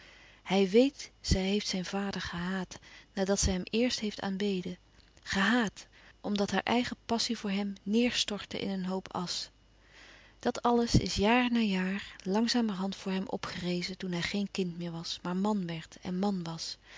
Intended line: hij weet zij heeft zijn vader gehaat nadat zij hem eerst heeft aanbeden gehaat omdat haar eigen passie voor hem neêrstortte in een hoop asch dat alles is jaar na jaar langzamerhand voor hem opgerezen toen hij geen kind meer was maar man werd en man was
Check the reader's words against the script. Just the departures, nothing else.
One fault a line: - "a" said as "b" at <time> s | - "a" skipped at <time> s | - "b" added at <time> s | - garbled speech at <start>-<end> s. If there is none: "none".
none